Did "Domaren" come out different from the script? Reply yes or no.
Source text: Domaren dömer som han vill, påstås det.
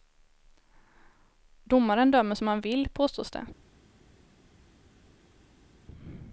no